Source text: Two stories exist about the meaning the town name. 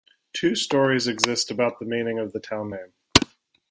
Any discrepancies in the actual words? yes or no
yes